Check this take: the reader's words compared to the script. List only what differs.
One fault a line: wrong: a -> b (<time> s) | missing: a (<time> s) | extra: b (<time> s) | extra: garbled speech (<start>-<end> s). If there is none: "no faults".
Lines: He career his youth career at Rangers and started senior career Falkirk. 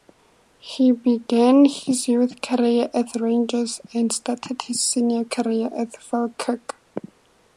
wrong: career -> began (0.9 s)
extra: his (4.6 s)
extra: at (5.8 s)